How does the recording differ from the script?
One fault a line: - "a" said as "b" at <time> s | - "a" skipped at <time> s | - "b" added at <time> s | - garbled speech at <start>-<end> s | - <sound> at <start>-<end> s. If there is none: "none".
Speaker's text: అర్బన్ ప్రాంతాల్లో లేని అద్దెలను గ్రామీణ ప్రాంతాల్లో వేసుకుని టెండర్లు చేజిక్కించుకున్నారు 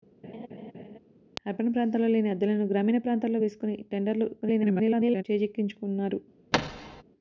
- laugh at 0.2-1.0 s
- garbled speech at 4.4-5.2 s
- thud at 6.5-7.0 s